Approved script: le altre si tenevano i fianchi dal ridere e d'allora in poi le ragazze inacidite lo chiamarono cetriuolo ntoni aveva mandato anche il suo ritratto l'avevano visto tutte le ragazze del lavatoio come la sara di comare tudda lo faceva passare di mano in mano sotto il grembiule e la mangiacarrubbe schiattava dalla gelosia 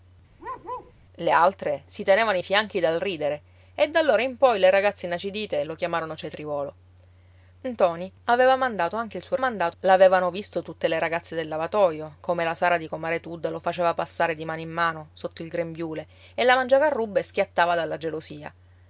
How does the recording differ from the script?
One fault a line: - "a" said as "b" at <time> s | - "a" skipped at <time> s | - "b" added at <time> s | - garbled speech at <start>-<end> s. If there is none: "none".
- "ritratto" said as "mandato" at 9.4 s